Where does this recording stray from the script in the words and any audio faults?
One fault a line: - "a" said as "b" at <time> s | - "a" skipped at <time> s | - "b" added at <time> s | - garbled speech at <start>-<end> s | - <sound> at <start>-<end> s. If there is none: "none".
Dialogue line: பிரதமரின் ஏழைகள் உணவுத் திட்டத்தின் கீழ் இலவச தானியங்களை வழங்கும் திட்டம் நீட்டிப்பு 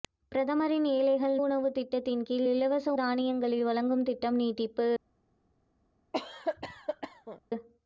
- cough at 6.1-7.4 s